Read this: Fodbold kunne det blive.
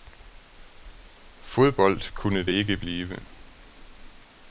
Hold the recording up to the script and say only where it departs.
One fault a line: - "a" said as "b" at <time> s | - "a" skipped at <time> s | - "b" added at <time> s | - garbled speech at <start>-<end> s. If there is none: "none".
- "ikke" added at 2.5 s